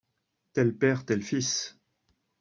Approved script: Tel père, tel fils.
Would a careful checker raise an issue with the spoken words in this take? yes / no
no